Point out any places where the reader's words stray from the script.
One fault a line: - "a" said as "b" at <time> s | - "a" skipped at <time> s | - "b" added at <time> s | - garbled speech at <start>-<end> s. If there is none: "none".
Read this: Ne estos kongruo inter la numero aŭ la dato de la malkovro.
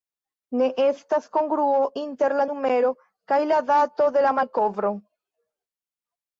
- "estos" said as "estas" at 0.8 s
- "aŭ" said as "kaj" at 3.3 s